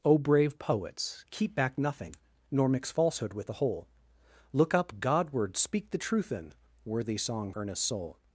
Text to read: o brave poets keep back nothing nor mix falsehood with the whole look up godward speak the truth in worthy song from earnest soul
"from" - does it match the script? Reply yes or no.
no